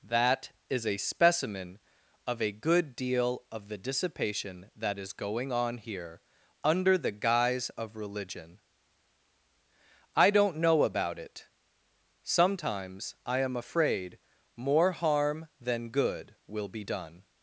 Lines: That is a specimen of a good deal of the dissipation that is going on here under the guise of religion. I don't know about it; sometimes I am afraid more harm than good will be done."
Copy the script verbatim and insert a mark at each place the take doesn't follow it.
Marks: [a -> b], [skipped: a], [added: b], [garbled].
That is a specimen of a good deal of the dissipation that is going on here under the guise of religion. I don't know about it; sometimes I am afraid more harm than good will be done."